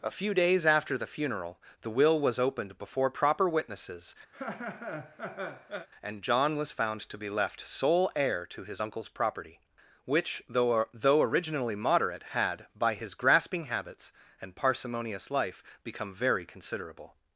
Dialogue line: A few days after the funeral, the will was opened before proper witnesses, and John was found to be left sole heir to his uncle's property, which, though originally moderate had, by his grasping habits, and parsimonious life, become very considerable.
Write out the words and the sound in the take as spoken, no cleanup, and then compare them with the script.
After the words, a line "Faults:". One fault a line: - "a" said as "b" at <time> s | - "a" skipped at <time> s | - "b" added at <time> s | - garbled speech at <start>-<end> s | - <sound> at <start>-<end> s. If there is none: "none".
A few days after the funeral, the will was opened before proper witnesses, and John was found to be left sole heir to his uncle's property, which, though though originally moderate had, by his grasping habits, and parsimonious life, become very considerable.
Faults:
- laugh at 4.3-5.9 s
- "though" added at 10.9 s